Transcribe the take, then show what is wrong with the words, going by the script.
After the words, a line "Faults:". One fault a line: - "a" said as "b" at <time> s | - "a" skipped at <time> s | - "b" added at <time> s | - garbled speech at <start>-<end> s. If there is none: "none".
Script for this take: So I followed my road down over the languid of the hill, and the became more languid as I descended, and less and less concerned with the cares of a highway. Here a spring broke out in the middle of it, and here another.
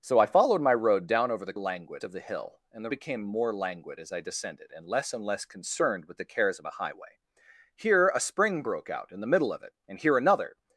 So I followed my road down over the languid of the hill, and the became more languid as I descended, and less and less concerned with the cares of a highway. Here a spring broke out in the middle of it, and here another.
Faults:
none